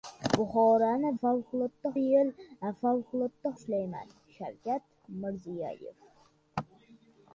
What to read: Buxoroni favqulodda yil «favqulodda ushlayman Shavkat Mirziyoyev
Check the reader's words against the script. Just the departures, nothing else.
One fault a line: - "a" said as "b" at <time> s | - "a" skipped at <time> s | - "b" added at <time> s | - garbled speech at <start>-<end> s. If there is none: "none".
none